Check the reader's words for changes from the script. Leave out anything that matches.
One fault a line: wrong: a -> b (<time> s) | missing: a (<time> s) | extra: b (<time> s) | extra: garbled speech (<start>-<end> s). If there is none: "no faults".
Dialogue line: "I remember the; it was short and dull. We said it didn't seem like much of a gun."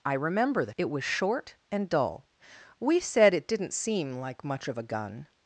no faults